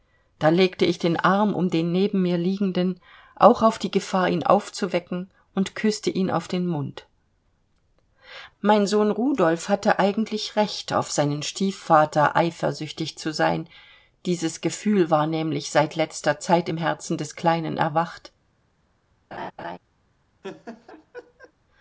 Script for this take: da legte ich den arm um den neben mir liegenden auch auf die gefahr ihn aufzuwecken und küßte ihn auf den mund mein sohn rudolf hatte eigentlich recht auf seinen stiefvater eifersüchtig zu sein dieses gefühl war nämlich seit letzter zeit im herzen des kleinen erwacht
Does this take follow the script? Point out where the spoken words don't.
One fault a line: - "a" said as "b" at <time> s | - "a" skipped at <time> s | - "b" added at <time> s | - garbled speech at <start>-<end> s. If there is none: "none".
none